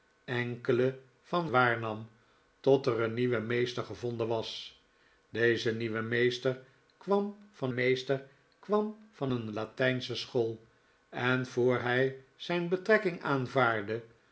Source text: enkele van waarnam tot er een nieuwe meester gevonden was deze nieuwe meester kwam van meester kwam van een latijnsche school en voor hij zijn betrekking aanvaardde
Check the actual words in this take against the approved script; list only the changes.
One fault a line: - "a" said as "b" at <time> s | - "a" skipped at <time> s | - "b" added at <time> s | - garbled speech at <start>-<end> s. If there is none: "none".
none